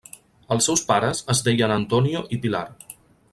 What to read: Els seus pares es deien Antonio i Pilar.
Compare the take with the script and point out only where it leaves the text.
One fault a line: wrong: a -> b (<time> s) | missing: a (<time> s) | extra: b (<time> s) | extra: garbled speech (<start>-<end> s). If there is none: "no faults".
no faults